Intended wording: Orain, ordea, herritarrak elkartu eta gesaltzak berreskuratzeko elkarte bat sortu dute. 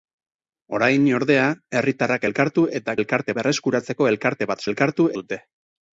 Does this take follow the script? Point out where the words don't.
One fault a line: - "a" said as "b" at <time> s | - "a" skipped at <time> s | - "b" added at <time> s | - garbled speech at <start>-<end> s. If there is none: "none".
- "gesaltzak" said as "elkarte" at 3.0 s
- "sortu" said as "elkartu" at 4.7 s